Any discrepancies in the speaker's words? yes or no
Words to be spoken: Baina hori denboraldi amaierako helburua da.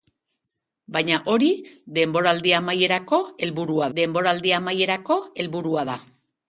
yes